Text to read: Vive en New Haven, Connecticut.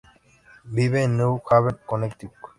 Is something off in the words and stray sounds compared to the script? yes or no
no